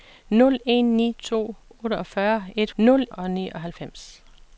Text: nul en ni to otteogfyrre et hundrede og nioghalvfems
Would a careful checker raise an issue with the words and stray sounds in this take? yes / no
yes